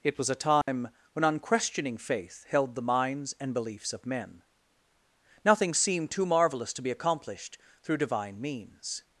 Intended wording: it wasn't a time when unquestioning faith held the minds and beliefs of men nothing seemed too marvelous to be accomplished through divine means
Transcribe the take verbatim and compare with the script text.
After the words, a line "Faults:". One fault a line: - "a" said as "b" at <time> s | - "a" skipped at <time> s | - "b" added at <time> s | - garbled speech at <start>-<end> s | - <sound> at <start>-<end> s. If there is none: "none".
it was a time when unquestioning faith held the minds and beliefs of men nothing seemed too marvelous to be accomplished through divine means
Faults:
- "wasn't" said as "was" at 0.2 s
- dropout at 0.6-0.7 s